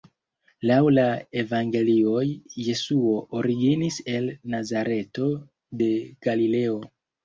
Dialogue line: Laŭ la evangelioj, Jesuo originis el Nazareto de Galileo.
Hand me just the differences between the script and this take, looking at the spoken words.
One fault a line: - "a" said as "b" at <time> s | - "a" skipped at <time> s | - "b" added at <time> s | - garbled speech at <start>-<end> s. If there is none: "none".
none